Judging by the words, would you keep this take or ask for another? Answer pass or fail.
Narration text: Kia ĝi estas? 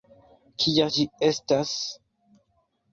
pass